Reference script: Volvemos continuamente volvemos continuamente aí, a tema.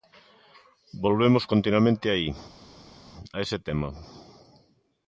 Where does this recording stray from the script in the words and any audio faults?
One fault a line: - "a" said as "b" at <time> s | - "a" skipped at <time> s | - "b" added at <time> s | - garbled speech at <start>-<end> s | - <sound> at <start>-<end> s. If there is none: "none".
- "volvemos continuamente" skipped at 2.1 s
- "ese" added at 3.4 s